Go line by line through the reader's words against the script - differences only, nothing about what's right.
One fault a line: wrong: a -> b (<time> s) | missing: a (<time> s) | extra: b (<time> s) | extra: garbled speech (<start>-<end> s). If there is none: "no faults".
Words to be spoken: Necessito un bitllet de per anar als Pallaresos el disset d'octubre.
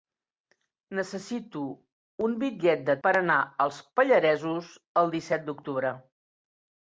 no faults